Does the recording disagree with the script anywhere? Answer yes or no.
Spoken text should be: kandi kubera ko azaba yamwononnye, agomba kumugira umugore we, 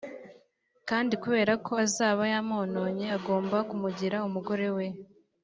no